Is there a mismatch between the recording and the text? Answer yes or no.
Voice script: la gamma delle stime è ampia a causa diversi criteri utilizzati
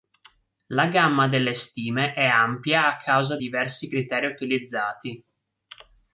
no